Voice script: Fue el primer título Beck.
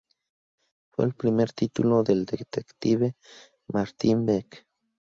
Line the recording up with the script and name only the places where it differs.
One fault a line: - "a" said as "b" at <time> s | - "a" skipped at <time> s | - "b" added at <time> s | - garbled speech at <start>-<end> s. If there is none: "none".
- "del detective Martin" added at 2.0 s